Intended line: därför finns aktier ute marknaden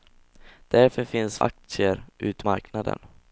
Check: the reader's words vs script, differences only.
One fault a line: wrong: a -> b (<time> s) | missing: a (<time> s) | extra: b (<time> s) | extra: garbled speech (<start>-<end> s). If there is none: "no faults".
no faults